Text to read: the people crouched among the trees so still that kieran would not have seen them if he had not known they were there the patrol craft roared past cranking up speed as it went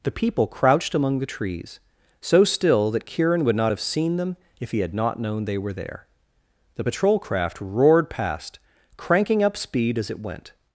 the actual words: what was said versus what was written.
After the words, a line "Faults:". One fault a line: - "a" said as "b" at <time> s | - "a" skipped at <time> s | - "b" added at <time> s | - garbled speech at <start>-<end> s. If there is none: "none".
the people crouched among the trees so still that kieran would not have seen them if he had not known they were there the patrol craft roared past cranking up speed as it went
Faults:
none